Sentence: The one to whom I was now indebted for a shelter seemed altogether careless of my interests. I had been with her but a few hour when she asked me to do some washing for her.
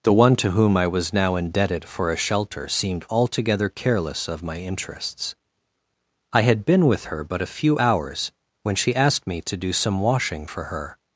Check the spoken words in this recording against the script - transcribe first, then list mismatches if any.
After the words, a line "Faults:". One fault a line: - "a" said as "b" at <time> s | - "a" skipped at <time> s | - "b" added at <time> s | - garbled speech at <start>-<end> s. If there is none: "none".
The one to whom I was now indebted for a shelter seemed altogether careless of my interests. I had been with her but a few hours when she asked me to do some washing for her.
Faults:
- "hour" said as "hours" at 7.8 s